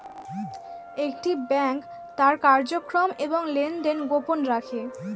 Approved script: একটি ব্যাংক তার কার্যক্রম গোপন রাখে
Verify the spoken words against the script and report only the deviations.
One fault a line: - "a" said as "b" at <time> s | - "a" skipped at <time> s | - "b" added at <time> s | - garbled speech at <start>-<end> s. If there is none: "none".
- "এবং লেনদেন" added at 3.2 s